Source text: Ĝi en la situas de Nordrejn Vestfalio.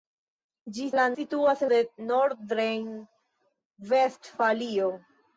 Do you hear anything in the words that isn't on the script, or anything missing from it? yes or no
no